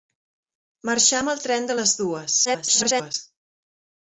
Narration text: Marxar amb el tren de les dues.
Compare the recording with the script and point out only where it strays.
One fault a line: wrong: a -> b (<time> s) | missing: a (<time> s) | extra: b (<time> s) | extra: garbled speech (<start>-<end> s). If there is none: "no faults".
extra: garbled speech (2.4-3.1 s)